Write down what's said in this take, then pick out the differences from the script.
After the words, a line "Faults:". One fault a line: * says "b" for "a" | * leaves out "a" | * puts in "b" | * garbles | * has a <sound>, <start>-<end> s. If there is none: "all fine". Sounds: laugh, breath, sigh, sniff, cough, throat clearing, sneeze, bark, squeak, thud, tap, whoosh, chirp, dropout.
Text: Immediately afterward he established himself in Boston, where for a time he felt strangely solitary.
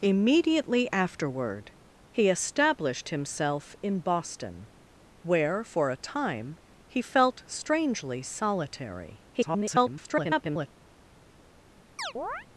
Immediately afterward he established himself in Boston, where for a time he felt strangely solitary. [garbled]
Faults:
* garbles
* has a chirp, 12.0-12.5 s